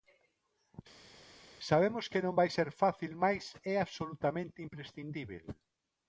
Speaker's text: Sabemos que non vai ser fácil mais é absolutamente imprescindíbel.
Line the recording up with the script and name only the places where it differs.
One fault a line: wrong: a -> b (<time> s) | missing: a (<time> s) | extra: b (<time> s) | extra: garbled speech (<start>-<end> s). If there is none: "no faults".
no faults